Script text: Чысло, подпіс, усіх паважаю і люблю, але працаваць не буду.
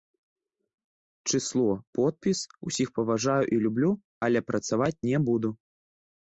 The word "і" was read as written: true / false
true